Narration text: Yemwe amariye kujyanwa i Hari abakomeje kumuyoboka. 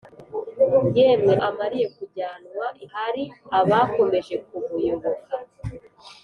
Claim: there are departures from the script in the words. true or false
false